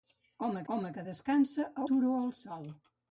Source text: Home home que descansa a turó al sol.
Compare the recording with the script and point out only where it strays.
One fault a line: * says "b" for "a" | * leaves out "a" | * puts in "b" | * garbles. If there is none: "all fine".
all fine